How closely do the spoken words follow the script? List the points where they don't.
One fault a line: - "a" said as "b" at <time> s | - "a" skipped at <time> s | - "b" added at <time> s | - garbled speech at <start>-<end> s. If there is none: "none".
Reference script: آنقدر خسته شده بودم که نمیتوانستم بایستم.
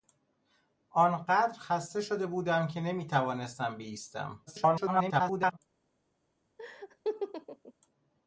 - garbled speech at 4.5-5.6 s